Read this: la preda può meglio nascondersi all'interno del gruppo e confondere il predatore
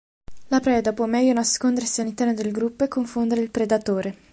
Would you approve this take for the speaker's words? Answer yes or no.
yes